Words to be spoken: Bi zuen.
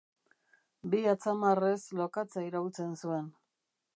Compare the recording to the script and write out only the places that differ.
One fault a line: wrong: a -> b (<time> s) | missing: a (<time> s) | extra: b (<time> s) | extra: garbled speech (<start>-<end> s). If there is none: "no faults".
extra: atzamarrez lokatza iraultzen (1.1 s)